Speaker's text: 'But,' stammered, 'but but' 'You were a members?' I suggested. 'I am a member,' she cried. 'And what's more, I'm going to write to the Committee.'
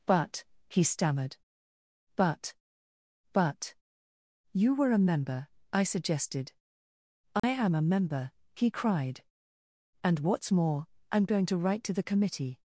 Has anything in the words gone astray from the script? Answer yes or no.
yes